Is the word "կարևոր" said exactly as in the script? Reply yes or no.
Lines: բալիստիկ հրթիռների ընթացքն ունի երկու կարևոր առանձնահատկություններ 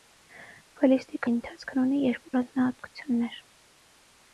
no